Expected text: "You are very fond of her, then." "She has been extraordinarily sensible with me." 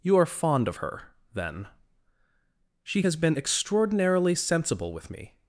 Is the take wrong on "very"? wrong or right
wrong